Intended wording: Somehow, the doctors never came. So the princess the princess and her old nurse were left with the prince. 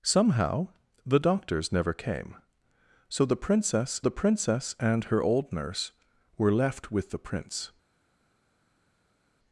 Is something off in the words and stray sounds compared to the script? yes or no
no